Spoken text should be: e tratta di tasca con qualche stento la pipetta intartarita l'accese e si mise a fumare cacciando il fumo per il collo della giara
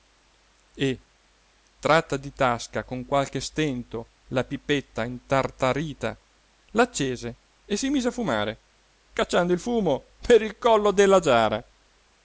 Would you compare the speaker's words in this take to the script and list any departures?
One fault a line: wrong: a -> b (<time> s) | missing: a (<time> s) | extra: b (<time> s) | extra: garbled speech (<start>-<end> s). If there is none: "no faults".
no faults